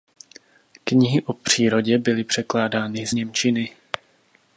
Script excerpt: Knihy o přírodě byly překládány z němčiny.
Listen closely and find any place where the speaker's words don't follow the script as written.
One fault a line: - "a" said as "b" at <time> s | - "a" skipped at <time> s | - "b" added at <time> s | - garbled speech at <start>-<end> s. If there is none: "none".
none